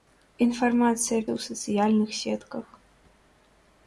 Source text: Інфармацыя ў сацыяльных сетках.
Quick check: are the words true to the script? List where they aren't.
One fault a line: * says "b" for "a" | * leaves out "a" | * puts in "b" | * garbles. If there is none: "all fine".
all fine